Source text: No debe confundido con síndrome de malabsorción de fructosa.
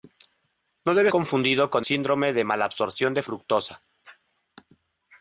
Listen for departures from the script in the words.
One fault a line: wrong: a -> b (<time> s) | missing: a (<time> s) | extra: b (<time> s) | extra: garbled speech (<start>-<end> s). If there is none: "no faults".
no faults